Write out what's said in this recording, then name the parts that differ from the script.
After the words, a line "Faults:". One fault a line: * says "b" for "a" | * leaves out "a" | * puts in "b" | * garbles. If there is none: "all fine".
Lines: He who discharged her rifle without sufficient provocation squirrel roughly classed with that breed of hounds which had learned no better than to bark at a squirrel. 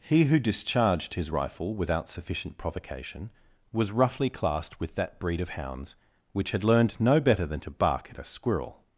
He who discharged his rifle without sufficient provocation was roughly classed with that breed of hounds which had learned no better than to bark at a squirrel.
Faults:
* says "his" for "her"
* says "was" for "squirrel"